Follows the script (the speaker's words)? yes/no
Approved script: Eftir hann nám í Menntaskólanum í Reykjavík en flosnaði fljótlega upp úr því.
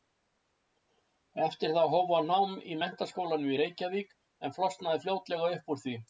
no